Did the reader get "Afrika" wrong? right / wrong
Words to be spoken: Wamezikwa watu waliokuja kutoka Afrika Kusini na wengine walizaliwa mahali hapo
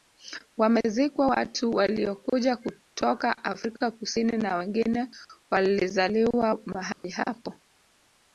right